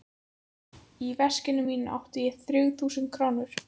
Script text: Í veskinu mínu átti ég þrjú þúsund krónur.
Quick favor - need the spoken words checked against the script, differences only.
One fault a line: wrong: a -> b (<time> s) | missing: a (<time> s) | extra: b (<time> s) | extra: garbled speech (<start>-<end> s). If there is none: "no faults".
no faults